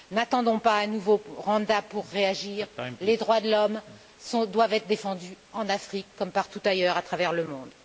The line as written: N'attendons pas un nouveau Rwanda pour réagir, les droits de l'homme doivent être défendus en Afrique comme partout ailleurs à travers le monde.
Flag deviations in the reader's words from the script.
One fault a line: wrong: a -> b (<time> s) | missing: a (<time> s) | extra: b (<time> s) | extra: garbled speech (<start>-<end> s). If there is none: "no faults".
no faults